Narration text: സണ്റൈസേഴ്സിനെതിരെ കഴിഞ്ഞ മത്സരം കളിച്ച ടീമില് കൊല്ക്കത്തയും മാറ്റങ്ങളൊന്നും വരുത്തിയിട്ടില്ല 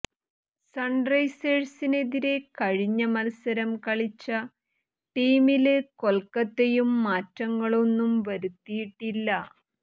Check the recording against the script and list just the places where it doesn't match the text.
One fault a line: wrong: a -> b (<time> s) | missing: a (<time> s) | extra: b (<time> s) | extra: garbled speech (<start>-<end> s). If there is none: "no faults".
no faults